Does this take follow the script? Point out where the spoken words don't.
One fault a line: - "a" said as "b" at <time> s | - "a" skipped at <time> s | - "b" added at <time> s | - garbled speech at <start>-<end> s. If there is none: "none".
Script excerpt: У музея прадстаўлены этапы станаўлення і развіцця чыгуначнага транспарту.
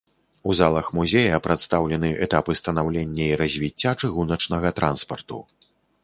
- "залах" added at 0.6 s